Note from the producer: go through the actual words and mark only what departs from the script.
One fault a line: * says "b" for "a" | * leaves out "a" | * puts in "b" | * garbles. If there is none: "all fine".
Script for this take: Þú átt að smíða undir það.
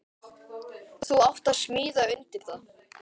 all fine